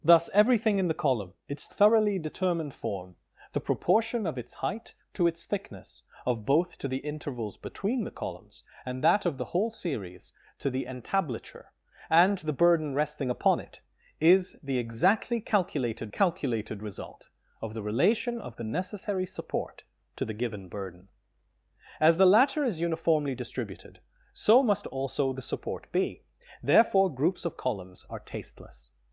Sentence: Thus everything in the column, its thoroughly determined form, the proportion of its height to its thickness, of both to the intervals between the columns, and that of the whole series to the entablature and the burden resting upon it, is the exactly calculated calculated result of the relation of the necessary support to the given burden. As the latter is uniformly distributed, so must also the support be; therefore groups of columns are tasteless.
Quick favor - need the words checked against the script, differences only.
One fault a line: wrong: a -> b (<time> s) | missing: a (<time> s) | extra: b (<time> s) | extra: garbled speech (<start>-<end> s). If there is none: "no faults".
no faults